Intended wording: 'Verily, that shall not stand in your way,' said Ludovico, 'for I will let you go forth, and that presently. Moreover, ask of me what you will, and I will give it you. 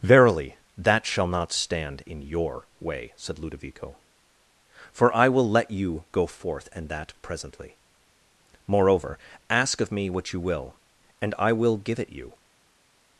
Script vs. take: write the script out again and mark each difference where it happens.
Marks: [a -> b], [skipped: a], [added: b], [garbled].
'Verily, that shall not stand in your way,' said Ludovico, 'for I will let you go forth, and that presently. Moreover, ask of me what you will, and I will give it you.